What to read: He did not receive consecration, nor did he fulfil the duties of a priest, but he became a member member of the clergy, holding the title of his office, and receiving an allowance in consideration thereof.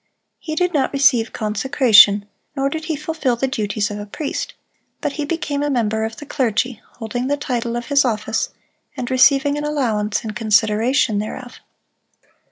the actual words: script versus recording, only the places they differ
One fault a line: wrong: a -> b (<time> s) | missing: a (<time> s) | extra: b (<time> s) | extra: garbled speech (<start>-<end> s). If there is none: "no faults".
missing: member (6.0 s)